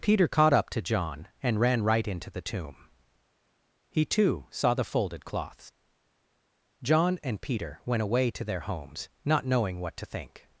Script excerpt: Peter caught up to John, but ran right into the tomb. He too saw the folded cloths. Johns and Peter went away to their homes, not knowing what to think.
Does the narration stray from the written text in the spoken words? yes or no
yes